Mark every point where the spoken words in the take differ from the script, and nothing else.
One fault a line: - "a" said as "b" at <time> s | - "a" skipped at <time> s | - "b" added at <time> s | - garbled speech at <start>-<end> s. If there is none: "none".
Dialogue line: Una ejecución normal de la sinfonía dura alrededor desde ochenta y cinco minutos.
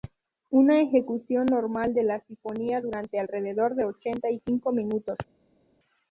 - "desde" said as "de" at 3.7 s